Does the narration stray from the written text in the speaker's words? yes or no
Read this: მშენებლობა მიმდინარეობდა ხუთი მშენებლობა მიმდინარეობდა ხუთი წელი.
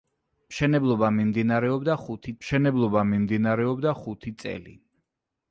no